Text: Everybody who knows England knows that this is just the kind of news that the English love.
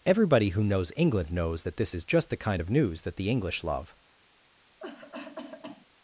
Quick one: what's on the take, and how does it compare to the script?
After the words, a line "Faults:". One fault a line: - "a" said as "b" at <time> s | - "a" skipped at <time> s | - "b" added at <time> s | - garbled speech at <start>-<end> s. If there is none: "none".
Everybody who knows England knows that this is just the kind of news that the English love.
Faults:
none